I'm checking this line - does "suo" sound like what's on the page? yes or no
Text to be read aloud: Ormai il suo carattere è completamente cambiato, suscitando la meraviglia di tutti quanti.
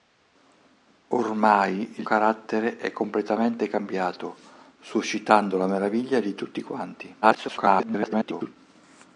no